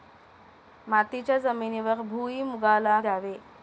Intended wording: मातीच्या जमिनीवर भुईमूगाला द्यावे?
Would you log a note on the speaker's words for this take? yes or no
no